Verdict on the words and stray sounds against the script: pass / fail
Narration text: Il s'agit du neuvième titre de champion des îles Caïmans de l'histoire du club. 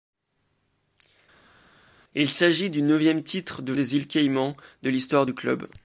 fail